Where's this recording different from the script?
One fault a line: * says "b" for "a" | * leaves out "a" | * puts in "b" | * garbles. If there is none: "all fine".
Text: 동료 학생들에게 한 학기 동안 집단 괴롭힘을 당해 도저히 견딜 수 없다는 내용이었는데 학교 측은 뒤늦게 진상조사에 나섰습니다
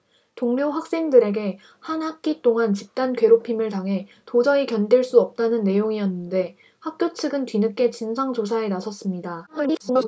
* garbles